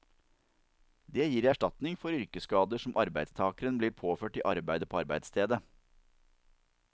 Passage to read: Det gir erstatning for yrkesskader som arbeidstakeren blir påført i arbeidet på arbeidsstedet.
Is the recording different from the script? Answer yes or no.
no